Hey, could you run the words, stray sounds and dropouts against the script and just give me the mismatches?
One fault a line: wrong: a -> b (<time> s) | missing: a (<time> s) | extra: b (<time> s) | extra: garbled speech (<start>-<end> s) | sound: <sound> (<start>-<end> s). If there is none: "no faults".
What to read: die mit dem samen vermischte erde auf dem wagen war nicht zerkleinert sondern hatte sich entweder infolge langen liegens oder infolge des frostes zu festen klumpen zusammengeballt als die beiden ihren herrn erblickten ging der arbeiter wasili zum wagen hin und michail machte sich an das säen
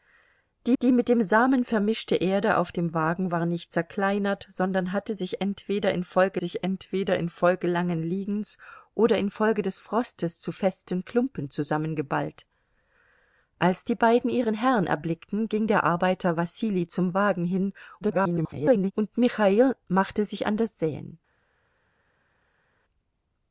extra: die (0.8 s)
extra: sich entweder infolge (6.4 s)
extra: garbled speech (18.0-18.9 s)